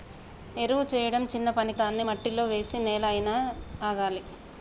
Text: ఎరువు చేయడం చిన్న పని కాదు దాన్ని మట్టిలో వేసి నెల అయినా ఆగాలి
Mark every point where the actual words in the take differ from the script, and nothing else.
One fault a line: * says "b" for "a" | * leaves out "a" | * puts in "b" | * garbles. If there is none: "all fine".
* leaves out "కాదు"